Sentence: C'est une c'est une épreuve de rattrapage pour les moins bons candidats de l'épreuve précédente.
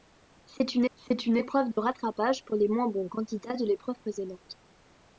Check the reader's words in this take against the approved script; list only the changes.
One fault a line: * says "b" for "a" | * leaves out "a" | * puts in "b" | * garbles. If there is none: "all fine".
all fine